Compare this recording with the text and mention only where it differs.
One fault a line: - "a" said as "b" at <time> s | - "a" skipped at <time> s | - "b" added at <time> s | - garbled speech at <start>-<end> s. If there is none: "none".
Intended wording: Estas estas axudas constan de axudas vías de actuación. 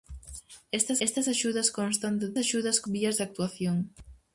none